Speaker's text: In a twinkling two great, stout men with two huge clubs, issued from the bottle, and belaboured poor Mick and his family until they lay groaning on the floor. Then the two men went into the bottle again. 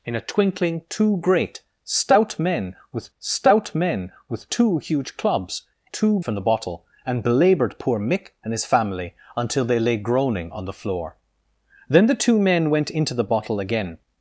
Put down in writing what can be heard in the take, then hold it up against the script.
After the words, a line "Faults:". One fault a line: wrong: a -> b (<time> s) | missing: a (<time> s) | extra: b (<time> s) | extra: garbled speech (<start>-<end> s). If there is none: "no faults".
In a twinkling two great, stout men with stout men with two huge clubs, two from the bottle, and belaboured poor Mick and his family until they lay groaning on the floor. Then the two men went into the bottle again.
Faults:
extra: stout men with (3.2 s)
wrong: issued -> two (5.9 s)